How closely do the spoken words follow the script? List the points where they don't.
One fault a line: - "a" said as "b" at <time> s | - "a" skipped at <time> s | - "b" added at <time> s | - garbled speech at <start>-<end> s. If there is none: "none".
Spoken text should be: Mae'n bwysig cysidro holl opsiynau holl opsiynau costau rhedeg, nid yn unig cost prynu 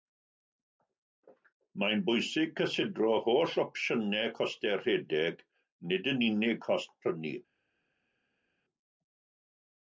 - "holl opsiynau" skipped at 4.3 s